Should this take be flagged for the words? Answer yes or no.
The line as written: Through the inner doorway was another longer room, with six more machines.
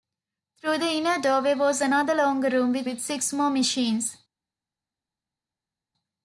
yes